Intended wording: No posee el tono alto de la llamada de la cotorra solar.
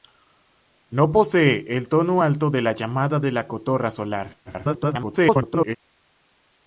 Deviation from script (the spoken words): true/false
true